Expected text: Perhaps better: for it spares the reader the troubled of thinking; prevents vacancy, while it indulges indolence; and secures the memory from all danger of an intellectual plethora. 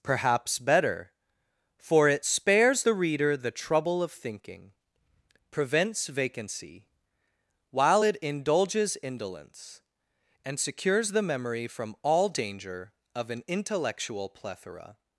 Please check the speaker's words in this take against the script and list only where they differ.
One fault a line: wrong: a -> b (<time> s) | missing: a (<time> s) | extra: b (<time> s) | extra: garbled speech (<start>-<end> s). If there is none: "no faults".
wrong: troubled -> trouble (3.5 s)